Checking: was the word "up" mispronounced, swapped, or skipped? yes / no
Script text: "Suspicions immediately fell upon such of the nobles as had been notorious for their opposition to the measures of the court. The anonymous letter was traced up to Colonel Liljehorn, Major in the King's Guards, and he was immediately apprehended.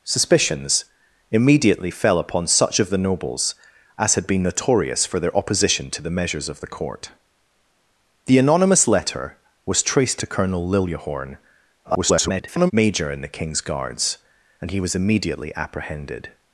yes